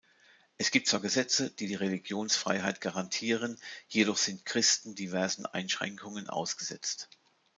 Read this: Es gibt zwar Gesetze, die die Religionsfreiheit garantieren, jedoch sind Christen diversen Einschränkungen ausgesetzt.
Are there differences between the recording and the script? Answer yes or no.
no